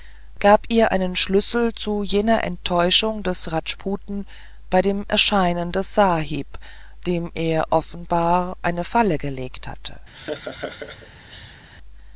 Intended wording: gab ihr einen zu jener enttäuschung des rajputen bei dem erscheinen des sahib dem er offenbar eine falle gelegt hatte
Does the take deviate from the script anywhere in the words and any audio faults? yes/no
yes